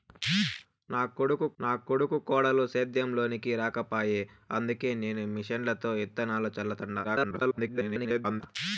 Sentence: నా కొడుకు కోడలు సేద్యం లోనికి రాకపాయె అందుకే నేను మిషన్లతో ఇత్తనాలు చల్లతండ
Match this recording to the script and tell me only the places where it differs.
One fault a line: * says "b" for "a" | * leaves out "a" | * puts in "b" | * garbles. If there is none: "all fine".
* puts in "నా కొడుకు"
* garbles